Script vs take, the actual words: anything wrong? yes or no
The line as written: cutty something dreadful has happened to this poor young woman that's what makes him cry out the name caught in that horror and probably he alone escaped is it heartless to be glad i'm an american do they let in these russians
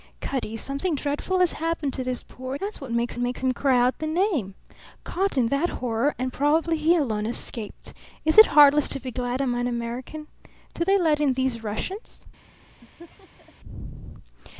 yes